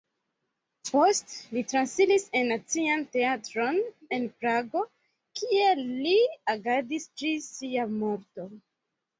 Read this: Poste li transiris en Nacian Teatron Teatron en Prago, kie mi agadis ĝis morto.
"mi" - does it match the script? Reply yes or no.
no